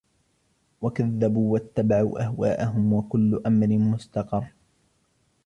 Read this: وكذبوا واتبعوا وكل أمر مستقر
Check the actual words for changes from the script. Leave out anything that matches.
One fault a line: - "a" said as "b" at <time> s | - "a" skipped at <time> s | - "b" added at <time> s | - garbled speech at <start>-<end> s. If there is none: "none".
- "أهواءهم" added at 2.2 s